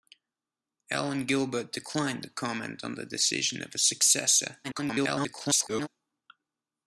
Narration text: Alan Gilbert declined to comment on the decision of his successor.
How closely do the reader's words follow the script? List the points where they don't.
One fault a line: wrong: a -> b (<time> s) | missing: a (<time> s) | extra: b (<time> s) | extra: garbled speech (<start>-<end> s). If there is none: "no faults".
extra: garbled speech (4.6-5.9 s)